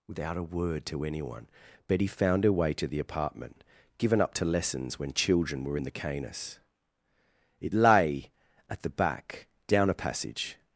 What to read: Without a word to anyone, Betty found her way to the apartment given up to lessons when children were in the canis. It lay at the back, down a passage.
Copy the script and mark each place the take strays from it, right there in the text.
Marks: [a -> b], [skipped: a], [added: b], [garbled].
Without a word to anyone, Betty found her way to the apartment given up to lessons when children were in the canis. It lay at the back, down a passage.